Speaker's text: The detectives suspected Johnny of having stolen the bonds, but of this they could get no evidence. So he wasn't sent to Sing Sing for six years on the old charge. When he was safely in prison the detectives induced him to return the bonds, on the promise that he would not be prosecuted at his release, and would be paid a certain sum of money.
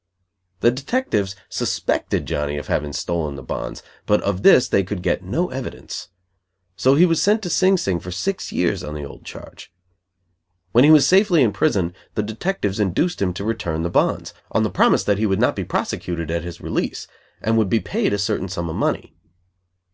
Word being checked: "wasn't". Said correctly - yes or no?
no